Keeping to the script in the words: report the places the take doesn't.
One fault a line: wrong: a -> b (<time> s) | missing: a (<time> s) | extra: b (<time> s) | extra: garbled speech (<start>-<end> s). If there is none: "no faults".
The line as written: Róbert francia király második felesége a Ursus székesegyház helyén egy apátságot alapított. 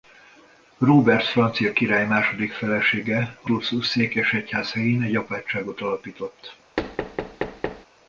no faults